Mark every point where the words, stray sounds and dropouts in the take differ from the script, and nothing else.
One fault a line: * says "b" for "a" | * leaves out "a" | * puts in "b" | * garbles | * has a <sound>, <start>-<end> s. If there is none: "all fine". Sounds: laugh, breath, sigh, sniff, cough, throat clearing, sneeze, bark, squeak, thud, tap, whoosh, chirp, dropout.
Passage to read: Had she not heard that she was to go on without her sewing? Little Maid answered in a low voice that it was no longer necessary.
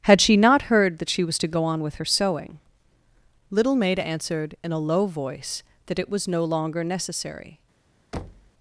* says "with" for "without"
* has a thud, 8.1-8.5 s